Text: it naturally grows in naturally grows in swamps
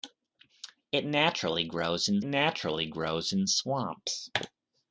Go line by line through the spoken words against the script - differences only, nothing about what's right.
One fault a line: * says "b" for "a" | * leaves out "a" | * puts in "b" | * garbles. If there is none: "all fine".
all fine